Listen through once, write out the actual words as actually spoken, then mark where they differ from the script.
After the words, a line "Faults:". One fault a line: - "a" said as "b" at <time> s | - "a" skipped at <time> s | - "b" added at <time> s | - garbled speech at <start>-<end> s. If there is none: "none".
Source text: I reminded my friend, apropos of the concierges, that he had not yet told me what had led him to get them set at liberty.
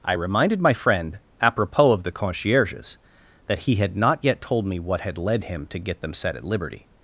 I reminded my friend, apropos of the concierges, that he had not yet told me what had led him to get them set at liberty.
Faults:
none